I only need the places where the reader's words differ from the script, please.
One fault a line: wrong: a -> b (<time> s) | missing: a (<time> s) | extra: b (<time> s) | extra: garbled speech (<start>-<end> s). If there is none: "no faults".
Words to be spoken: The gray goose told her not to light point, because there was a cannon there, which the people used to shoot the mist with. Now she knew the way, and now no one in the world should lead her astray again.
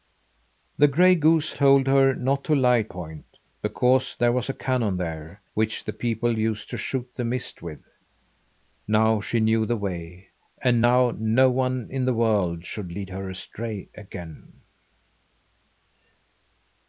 no faults